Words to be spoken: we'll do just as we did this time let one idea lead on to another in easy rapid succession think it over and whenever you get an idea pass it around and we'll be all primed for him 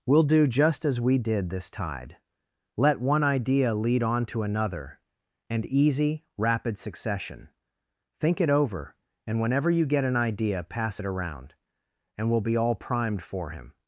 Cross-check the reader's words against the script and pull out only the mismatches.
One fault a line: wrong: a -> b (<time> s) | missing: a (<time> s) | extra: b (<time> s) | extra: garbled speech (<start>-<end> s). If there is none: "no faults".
wrong: time -> tide (1.7 s)
wrong: in -> and (5.5 s)